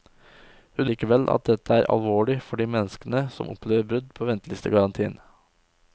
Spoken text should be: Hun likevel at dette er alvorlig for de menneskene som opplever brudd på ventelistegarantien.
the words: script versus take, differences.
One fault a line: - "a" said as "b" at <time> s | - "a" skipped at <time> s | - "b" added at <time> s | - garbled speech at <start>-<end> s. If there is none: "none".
none